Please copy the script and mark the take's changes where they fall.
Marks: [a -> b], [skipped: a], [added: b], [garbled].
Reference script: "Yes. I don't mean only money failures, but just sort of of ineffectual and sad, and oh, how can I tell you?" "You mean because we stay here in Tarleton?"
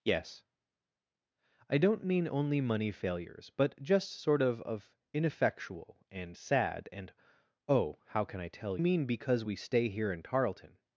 "Yes. I don't mean only money failures, but just sort of of ineffectual and sad, and oh, how can I tell [skipped: you?" "You] mean because we stay here in Tarleton?"